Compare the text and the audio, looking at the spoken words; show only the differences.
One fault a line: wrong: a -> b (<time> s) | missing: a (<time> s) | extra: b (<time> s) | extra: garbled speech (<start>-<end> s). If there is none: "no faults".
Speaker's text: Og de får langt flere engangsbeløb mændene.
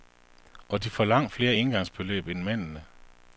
extra: end (2.3 s)